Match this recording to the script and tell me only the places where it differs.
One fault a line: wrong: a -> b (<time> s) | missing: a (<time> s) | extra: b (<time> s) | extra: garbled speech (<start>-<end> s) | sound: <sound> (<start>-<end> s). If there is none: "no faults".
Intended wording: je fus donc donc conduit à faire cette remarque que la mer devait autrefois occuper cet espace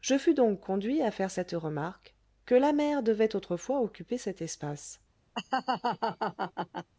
missing: donc (0.6 s)
sound: laugh (5.3-6.9 s)